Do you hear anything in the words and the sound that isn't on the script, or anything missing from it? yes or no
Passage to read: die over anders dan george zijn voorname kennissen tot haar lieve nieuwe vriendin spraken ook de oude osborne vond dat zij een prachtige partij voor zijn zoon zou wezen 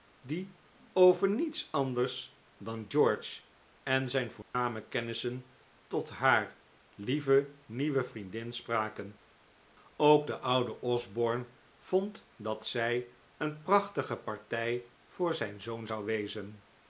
yes